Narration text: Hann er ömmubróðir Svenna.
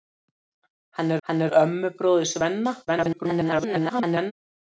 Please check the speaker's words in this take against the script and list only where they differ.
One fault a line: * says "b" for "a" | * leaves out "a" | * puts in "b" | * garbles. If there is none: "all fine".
* puts in "hann"
* garbles